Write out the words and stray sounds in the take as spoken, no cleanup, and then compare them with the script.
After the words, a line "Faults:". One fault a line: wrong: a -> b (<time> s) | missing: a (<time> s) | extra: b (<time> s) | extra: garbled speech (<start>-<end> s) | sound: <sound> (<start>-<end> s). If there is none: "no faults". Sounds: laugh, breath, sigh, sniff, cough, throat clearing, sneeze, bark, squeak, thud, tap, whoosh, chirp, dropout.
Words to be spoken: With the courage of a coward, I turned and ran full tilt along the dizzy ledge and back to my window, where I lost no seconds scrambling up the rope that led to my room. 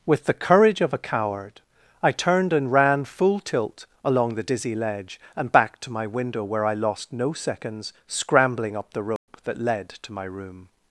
With the courage of a coward, I turned and ran full tilt along the dizzy ledge and back to my window, where I lost no seconds scrambling up the rope that led to my room.
Faults:
sound: dropout (9.2-9.3 s)